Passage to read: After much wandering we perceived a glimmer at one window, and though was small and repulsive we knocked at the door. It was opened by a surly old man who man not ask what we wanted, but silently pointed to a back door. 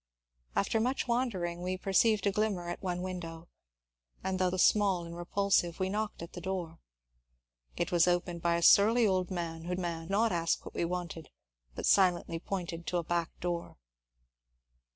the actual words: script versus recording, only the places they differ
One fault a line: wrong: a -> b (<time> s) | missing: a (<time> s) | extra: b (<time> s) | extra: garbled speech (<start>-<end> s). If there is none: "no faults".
no faults